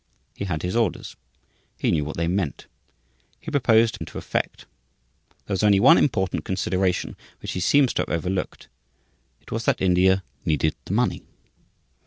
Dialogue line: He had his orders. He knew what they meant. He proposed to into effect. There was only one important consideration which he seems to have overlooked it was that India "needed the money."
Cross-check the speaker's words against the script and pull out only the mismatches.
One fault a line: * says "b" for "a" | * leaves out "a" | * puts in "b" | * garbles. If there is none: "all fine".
all fine